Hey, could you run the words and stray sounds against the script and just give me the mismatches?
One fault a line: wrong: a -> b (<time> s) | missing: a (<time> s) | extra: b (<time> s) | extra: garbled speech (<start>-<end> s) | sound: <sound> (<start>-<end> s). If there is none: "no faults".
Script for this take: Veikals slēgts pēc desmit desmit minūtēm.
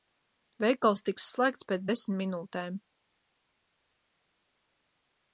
extra: tiks (1.1 s)
missing: desmit (2.2 s)